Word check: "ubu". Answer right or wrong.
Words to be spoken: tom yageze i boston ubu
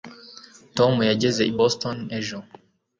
wrong